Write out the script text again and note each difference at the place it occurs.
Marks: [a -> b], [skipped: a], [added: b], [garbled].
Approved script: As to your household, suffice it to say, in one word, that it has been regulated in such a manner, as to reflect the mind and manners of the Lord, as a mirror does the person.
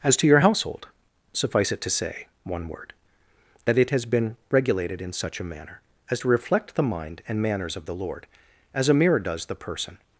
As to your household, suffice it to say, [skipped: in] one word, that it has been regulated in such a manner, as to reflect the mind and manners of the Lord, as a mirror does the person.